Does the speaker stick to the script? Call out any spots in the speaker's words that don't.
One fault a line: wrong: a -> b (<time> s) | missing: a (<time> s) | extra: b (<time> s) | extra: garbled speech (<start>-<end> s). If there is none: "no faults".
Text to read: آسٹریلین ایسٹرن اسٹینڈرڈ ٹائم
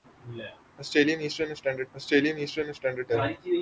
extra: آسٹریلین ایسٹرن اسٹینڈرڈ (1.9 s)